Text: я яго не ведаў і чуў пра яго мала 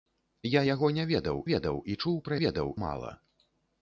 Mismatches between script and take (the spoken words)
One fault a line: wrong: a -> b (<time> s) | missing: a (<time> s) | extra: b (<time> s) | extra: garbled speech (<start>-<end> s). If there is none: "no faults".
extra: ведаў (1.5 s)
wrong: яго -> ведаў (2.4 s)